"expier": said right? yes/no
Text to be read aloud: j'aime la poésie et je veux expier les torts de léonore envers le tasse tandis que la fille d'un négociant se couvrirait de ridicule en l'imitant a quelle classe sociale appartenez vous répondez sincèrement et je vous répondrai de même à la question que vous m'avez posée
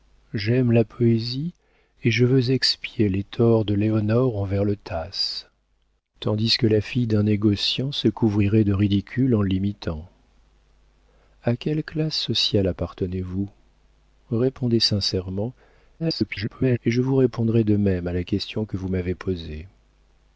yes